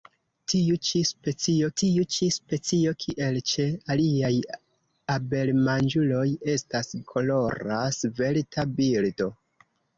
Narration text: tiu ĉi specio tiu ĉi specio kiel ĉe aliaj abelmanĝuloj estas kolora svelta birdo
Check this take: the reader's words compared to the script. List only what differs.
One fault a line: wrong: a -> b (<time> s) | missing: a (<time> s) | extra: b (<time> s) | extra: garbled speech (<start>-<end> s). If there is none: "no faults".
no faults